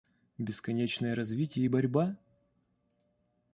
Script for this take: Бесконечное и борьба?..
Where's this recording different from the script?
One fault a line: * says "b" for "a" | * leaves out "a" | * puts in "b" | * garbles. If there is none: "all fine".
* puts in "развитие"